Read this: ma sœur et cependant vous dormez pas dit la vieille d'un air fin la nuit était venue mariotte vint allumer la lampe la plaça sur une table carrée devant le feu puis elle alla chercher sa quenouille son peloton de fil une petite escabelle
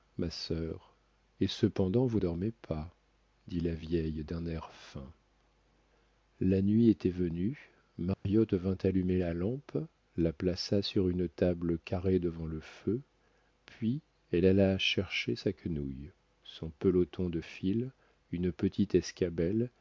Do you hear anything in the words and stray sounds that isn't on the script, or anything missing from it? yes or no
yes